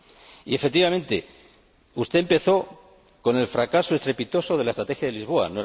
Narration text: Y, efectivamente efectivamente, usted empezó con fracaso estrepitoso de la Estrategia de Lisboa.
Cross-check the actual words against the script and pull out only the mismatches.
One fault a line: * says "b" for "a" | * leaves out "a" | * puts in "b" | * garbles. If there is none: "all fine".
* leaves out "efectivamente"
* puts in "el"